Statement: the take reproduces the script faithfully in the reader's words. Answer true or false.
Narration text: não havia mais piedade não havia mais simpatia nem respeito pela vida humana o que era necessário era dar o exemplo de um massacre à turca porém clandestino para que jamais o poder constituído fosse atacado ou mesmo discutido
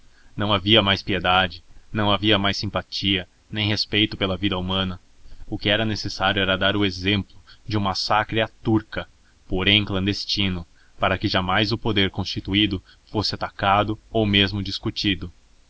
true